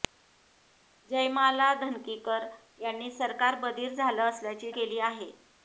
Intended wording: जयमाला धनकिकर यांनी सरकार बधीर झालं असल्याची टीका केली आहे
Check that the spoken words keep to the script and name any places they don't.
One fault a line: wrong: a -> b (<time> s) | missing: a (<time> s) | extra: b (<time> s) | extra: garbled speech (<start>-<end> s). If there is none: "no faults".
missing: टीका (4.7 s)